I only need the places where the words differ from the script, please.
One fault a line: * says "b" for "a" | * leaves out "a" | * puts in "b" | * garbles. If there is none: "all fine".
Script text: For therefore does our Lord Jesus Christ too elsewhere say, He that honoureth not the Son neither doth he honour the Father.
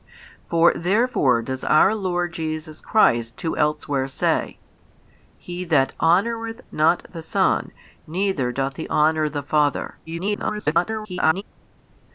* garbles